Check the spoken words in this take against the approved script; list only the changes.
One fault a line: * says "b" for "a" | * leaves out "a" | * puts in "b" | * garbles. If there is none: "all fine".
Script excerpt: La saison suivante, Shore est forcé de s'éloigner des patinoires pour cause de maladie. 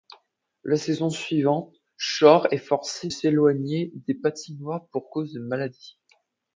* leaves out "de"